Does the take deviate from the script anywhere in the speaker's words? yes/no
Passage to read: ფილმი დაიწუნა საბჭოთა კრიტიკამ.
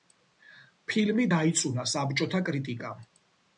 no